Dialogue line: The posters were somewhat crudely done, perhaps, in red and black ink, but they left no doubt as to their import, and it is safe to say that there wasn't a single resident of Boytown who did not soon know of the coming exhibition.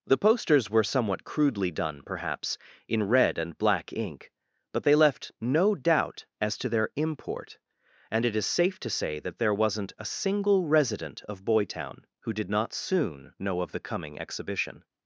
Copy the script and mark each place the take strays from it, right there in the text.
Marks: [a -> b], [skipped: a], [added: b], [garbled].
The posters were somewhat crudely done, perhaps, in red and black ink, but they left no doubt as to their import, and it is safe to say that there wasn't a single resident of Boytown who did not soon know of the coming exhibition.